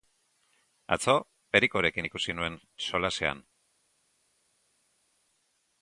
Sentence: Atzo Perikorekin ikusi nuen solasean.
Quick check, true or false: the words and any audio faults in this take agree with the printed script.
true